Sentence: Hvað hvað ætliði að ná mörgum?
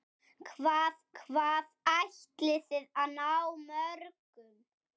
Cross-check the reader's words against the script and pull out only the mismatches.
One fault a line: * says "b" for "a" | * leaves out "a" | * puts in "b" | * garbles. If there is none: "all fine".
all fine